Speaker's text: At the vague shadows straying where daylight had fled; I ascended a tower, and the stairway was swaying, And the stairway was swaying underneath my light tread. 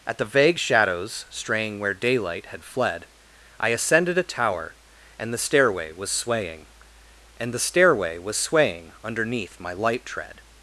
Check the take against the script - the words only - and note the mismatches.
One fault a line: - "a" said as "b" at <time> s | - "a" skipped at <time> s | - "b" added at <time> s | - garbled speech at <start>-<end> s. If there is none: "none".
none